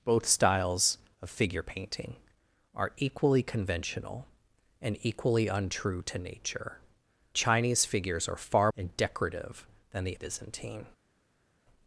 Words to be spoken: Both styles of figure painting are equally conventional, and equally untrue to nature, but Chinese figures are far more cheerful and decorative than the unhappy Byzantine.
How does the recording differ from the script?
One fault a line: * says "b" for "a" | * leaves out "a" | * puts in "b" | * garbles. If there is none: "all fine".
* leaves out "but"
* leaves out "more cheerful"
* leaves out "unhappy"